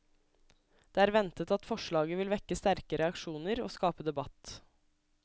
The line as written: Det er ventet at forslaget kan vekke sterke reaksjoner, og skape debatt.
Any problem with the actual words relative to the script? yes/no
yes